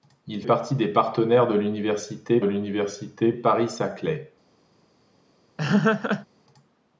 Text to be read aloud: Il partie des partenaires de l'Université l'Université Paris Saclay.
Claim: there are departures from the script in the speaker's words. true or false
false